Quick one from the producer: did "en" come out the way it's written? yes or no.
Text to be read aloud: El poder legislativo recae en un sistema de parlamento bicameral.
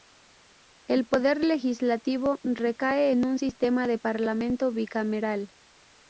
yes